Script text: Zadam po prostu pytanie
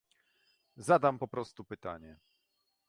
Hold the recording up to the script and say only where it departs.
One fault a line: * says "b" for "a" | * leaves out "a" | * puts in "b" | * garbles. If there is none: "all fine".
all fine